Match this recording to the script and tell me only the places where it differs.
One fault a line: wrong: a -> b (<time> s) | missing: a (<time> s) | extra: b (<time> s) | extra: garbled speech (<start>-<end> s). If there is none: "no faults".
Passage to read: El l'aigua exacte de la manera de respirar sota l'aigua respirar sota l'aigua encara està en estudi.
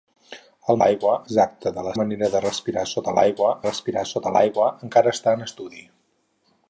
no faults